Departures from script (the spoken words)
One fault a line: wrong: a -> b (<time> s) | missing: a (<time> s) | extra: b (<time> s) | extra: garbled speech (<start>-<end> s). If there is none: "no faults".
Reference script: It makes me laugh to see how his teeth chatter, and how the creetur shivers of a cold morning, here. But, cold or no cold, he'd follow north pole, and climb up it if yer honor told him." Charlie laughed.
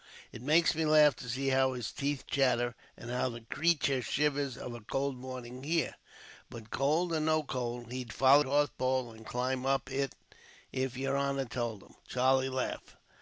no faults